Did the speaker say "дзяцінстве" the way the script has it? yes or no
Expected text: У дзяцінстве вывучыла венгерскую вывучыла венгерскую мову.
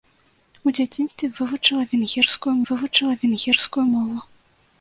yes